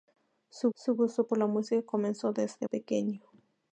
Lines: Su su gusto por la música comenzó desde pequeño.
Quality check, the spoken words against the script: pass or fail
pass